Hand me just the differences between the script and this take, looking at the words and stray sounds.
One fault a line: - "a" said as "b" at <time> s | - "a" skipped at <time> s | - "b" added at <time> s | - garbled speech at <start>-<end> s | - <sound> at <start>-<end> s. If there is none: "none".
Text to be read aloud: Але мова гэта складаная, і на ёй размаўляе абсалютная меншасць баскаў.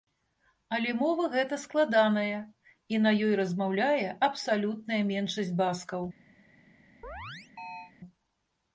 - chirp at 7.0-7.9 s